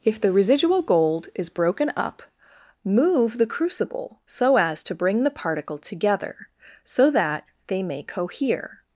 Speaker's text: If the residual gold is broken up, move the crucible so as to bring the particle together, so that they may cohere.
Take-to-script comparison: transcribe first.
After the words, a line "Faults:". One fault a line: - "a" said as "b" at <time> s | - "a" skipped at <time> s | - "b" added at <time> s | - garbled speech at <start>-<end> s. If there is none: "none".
If the residual gold is broken up, move the crucible so as to bring the particle together, so that they may cohere.
Faults:
none